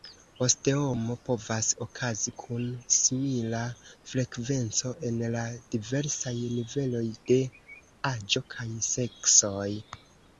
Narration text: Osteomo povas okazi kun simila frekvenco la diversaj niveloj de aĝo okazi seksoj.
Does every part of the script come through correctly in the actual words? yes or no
no